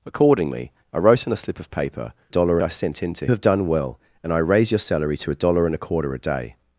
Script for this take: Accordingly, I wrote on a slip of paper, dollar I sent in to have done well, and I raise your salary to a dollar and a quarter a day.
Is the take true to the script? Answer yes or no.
yes